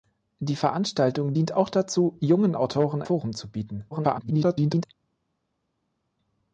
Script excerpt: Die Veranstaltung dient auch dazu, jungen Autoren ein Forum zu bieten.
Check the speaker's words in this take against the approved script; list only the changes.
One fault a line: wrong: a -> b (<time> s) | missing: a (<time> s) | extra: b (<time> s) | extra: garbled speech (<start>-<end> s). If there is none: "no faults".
missing: ein (3.0 s)
extra: garbled speech (3.9-4.9 s)